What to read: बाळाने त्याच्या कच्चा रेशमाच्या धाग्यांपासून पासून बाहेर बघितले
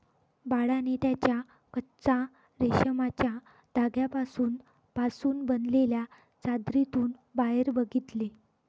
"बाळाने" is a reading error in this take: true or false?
false